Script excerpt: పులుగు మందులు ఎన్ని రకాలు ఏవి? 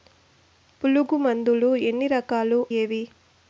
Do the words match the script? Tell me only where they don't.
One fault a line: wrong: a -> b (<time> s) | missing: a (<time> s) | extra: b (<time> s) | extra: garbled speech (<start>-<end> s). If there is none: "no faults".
no faults